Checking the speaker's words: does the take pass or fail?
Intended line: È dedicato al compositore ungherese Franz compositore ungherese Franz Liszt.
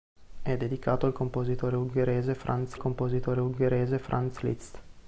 pass